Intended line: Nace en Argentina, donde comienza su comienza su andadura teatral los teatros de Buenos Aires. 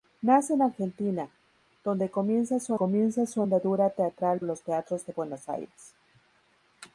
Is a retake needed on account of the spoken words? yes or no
no